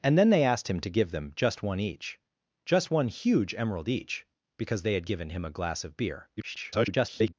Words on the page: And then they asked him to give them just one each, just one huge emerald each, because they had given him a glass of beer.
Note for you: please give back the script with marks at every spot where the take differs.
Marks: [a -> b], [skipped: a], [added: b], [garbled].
And then they asked him to give them just one each, just one huge emerald each, because they had given him a glass of beer. [garbled]